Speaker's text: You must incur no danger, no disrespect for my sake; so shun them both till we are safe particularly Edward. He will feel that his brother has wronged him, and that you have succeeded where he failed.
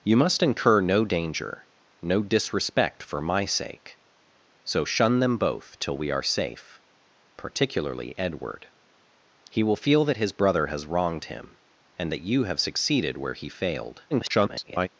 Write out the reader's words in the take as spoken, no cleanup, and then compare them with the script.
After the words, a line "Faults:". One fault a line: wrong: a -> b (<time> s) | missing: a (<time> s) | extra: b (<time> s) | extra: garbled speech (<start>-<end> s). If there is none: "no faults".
You must incur no danger, no disrespect for my sake; so shun them both till we are safe particularly Edward. He will feel that his brother has wronged him, and that you have succeeded where he failed. [garbled]
Faults:
extra: garbled speech (14.1-14.9 s)